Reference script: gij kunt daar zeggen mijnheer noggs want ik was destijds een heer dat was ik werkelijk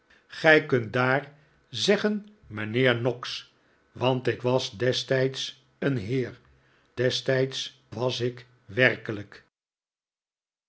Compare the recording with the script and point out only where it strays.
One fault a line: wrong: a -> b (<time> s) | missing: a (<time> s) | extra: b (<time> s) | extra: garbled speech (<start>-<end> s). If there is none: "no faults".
wrong: dat -> destijds (6.9 s)